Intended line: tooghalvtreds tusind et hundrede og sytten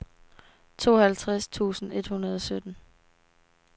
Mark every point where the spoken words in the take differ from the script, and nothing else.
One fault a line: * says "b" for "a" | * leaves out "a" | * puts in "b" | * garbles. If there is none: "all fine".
all fine